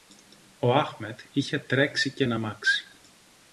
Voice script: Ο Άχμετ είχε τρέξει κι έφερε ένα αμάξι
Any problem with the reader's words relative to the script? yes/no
yes